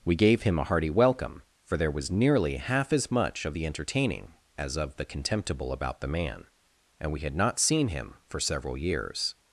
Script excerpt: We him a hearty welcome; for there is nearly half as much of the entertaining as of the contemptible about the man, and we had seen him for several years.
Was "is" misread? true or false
true